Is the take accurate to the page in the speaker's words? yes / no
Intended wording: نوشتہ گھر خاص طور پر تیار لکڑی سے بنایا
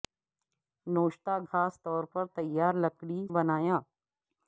no